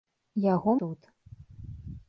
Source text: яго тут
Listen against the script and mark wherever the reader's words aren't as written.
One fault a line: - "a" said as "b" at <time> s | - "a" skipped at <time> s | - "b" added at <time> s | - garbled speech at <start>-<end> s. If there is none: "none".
none